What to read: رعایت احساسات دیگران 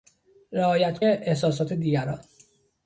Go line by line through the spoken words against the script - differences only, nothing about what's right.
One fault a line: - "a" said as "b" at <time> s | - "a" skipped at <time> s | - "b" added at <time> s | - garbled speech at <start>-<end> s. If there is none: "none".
none